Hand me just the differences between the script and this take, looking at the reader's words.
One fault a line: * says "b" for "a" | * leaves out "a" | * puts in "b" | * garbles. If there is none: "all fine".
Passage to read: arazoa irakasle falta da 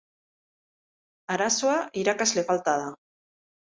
all fine